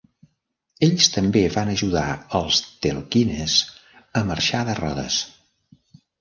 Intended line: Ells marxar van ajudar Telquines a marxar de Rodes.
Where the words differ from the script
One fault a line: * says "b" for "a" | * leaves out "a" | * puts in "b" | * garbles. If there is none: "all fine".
* says "també" for "marxar"
* puts in "els"